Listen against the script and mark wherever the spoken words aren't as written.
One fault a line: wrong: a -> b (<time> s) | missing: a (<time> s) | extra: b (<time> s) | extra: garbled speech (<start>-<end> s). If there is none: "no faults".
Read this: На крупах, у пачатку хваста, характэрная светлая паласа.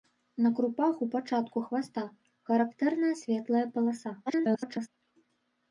extra: garbled speech (4.3-4.9 s)